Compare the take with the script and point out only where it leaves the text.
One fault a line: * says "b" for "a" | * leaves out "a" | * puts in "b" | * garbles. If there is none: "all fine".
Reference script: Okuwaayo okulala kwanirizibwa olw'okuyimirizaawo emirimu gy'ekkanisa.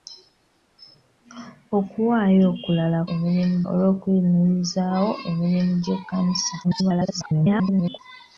* says "emirimu" for "kwanirizibwa"
* garbles